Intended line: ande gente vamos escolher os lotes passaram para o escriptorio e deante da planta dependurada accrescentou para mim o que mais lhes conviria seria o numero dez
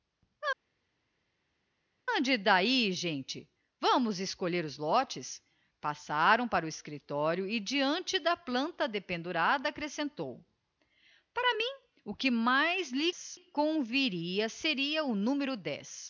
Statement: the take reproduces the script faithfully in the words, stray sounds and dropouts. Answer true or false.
false